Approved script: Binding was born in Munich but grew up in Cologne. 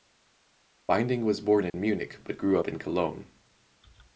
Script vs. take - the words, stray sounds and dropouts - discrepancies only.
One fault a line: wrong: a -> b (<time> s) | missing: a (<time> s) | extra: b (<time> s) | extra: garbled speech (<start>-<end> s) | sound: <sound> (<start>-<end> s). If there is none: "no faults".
sound: dropout (1.7-1.7 s)